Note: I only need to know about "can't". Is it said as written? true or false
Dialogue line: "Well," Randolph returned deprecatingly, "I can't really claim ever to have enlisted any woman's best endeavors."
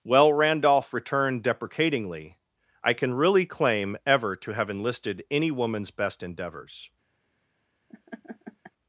false